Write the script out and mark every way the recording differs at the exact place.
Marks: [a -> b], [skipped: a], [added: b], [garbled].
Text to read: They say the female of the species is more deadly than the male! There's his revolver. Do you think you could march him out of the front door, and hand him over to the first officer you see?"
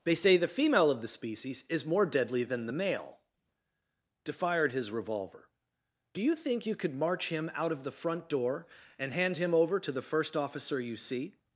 They say the female of the species is more deadly than the male! [There's -> Defired] his revolver. Do you think you could march him out of the front door, and hand him over to the first officer you see?"